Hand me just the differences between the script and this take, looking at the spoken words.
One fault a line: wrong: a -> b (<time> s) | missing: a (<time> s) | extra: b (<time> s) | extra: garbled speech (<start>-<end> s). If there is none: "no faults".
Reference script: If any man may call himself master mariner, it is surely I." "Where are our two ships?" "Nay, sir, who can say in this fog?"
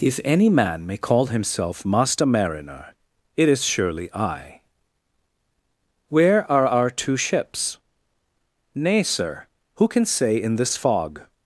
no faults